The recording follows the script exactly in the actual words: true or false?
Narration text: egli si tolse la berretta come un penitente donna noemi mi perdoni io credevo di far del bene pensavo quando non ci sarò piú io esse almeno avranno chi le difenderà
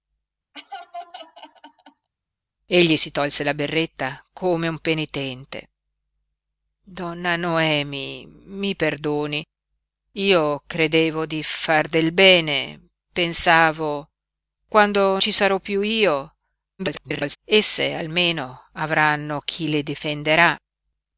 false